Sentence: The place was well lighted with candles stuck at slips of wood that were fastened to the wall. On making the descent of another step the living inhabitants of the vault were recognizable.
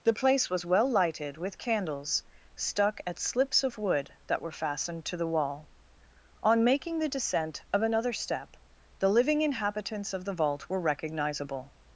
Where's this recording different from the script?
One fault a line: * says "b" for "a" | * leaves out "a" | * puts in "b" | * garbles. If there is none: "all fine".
all fine